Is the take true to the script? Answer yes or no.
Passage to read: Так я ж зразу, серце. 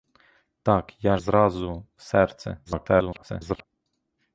no